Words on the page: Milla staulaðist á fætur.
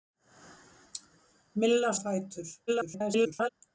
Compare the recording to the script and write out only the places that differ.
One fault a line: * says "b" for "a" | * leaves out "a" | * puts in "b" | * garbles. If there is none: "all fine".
* leaves out "staulaðist"
* garbles